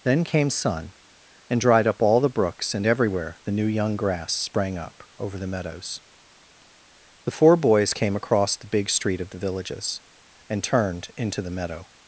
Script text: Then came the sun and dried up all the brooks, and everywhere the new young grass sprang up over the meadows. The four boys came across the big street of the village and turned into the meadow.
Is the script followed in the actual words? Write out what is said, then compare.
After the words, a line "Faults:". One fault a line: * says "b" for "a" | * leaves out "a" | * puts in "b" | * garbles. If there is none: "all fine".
Then came sun and dried up all the brooks, and everywhere the new young grass sprang up over the meadows. The four boys came across the big street of the villages and turned into the meadow.
Faults:
* leaves out "the"
* says "villages" for "village"